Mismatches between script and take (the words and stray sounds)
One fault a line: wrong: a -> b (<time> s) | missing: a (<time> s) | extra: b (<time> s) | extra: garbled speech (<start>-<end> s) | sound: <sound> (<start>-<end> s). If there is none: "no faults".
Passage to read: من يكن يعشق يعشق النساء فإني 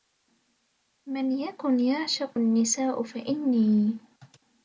missing: يعشق (2.4 s)